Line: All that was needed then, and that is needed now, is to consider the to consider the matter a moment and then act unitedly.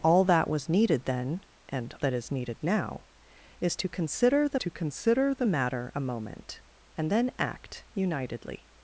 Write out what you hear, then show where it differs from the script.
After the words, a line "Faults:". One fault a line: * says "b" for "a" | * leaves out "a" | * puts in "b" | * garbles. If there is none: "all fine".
All that was needed then, and that is needed now, is to consider the to consider the matter a moment and then act unitedly.
Faults:
all fine